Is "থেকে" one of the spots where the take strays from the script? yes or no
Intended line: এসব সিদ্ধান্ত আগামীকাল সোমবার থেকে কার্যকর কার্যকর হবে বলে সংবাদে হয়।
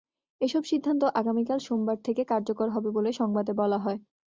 no